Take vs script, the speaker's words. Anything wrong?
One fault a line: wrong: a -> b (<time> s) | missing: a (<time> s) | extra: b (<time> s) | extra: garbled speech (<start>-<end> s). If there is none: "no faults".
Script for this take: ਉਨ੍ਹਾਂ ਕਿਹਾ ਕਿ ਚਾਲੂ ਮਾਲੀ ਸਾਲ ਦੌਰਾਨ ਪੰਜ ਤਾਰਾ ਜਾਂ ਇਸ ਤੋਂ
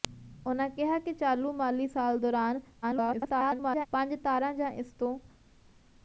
extra: garbled speech (2.8-3.9 s)